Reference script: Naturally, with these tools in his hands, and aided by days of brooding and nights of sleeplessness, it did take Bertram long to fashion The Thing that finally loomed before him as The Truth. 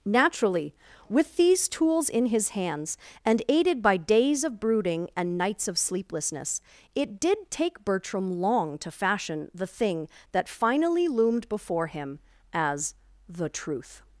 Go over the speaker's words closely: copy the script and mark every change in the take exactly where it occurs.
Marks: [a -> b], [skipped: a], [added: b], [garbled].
Naturally, with these tools in his hands, and aided by days of brooding and nights of sleeplessness, it did take Bertram long to fashion The Thing that finally loomed before him as The Truth.